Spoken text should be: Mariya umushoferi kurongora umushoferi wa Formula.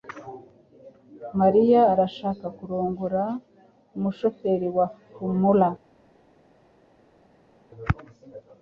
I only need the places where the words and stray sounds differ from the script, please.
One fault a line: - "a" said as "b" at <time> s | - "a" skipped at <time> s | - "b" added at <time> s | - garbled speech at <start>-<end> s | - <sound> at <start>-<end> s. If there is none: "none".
- "umushoferi" said as "arashaka" at 1.9 s